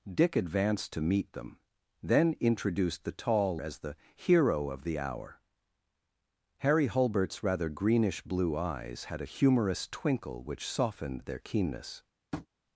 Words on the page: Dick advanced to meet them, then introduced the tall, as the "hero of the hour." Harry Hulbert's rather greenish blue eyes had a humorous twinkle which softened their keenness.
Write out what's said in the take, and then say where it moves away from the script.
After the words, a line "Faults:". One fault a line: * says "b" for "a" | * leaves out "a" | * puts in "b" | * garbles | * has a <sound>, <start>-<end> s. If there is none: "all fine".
Dick advanced to meet them, then introduced the tall, as the "hero of the hour." Harry Hulbert's rather greenish blue eyes had a humorous twinkle which softened their keenness.
Faults:
* has a tap, 12.3-12.5 s